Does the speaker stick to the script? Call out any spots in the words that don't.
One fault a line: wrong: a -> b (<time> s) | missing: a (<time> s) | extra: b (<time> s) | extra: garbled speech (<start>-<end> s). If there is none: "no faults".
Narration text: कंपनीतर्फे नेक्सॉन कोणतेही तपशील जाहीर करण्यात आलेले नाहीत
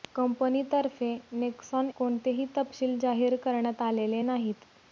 no faults